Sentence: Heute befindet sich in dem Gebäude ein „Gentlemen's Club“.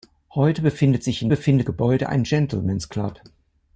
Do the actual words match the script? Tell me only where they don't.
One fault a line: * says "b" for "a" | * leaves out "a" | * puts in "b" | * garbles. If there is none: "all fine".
* says "befindet" for "dem"